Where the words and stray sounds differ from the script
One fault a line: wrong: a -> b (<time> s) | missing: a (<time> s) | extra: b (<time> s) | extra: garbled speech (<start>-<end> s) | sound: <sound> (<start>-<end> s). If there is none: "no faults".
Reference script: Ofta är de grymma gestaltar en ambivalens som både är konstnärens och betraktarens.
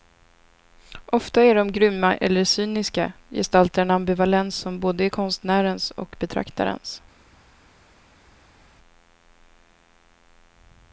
extra: eller cyniska (2.1 s)